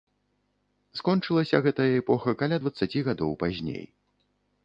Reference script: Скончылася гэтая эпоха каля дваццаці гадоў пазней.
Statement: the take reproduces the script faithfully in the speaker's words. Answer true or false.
true